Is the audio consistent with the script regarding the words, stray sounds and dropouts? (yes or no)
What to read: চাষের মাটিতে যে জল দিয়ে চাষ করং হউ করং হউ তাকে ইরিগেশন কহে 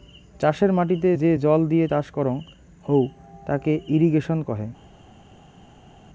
no